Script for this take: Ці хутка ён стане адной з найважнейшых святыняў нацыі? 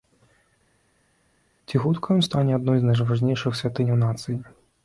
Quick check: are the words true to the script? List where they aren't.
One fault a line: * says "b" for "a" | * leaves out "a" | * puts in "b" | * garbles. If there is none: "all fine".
all fine